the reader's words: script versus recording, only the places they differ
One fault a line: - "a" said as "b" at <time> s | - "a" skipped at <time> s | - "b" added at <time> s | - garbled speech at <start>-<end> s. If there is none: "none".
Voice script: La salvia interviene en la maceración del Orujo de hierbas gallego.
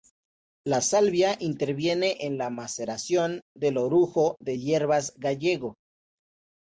none